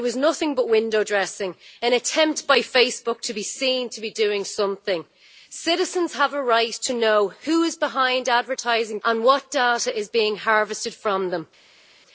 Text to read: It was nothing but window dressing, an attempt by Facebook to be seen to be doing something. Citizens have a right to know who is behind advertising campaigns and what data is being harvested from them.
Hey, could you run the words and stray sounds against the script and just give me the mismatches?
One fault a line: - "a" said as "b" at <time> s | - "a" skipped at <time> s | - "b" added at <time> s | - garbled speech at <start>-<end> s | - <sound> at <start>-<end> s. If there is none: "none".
- "campaigns" skipped at 9.0 s